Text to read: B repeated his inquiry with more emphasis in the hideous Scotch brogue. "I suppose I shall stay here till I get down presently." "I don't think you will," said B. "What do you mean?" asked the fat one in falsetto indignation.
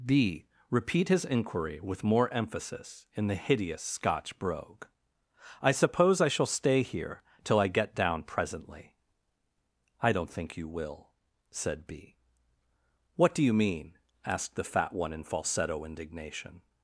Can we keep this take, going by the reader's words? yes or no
no